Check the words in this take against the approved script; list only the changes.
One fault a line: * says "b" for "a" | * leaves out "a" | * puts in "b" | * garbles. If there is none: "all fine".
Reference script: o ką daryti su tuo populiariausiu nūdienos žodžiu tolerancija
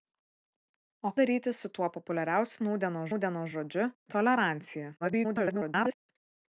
* leaves out "ką"
* puts in "nūdienos"
* garbles